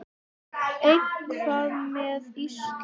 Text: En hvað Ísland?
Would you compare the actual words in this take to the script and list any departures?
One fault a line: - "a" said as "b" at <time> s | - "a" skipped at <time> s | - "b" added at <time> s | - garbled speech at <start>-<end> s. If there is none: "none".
- "með" added at 2.0 s